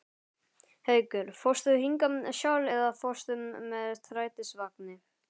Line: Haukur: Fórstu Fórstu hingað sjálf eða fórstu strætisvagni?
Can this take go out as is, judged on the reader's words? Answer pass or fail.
fail